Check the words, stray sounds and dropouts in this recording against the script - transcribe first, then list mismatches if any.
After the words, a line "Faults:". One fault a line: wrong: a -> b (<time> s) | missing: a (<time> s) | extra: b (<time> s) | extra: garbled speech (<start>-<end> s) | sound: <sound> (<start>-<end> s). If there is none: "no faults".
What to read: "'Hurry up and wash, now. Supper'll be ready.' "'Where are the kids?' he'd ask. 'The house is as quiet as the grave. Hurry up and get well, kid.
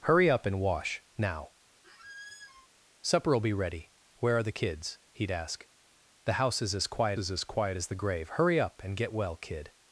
"'Hurry up and wash, now. Supper'll be ready.' "'Where are the kids?' he'd ask. 'The house is as quiet is as quiet as the grave. Hurry up and get well, kid.
Faults:
sound: squeak (1.8-2.7 s)
extra: is as quiet (7.2 s)